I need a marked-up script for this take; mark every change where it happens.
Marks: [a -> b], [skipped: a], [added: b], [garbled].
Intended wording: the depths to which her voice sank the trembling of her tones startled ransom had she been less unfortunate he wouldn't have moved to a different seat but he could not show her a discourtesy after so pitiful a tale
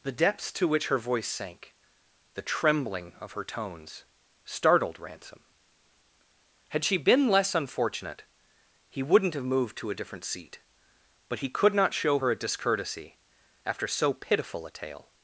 the depths to which her voice sank the trembling of her tones startled ransom had she been less unfortunate he wouldn't have moved to a different seat but he could not show her a discourtesy after so pitiful a tale